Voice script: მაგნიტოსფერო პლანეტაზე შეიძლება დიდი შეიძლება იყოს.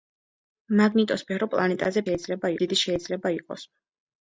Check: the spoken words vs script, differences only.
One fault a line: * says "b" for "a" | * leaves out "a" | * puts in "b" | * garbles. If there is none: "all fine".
all fine